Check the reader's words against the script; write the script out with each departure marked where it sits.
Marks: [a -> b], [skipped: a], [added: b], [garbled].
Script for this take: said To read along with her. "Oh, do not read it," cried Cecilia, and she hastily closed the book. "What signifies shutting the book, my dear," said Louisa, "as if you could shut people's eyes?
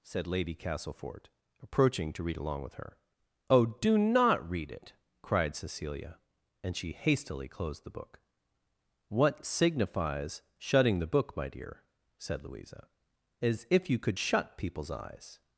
said [added: Lady Castlefort approaching] To read along with her. "Oh, do not read it," cried Cecilia, and she hastily closed the book. "What signifies shutting the book, my dear," said Louisa, "as if you could shut people's eyes?